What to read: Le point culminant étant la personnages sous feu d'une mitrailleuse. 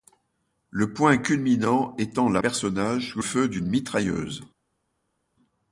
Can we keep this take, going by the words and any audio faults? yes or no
yes